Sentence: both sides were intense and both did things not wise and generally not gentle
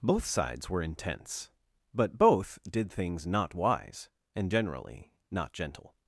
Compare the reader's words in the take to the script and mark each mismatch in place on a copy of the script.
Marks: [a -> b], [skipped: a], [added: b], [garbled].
both sides were intense [and -> but] both did things not wise and generally not gentle